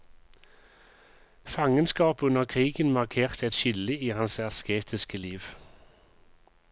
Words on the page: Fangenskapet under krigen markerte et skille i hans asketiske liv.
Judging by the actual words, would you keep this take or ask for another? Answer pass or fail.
pass